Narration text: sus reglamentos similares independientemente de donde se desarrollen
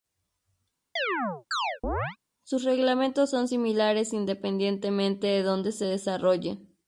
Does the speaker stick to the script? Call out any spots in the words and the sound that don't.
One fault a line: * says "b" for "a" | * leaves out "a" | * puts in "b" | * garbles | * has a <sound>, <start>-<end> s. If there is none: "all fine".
* has a chirp, 1.0-2.2 s
* puts in "son"